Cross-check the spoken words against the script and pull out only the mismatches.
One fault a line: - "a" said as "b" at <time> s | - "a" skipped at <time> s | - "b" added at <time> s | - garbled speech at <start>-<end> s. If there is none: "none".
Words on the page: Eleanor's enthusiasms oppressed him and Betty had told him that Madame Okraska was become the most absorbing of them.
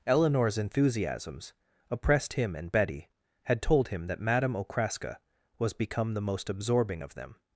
none